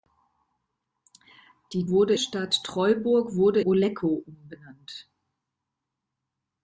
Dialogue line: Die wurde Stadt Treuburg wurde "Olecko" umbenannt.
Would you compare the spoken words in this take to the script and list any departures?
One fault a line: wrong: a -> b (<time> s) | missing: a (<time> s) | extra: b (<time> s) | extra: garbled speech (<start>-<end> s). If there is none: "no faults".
no faults